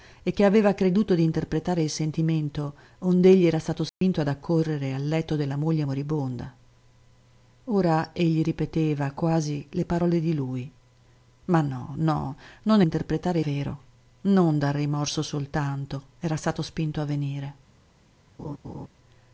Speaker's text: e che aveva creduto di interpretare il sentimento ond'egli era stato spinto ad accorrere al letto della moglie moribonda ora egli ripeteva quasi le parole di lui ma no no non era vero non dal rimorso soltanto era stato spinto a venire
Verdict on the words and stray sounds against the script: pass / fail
fail